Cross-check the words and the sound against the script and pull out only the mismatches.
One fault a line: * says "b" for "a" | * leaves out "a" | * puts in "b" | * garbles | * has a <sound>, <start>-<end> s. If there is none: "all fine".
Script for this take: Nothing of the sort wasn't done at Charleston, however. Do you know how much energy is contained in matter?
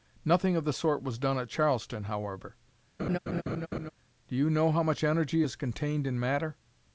* says "was" for "wasn't"
* has a laugh, 3.0-3.9 s